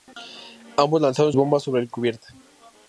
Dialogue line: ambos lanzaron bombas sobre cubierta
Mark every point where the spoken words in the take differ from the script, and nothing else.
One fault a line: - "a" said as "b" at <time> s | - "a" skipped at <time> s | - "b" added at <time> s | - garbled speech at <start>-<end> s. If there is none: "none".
none